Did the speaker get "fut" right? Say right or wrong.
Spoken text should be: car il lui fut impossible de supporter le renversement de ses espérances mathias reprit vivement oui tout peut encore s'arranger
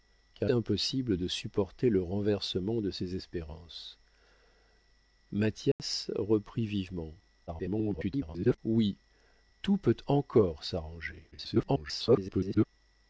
wrong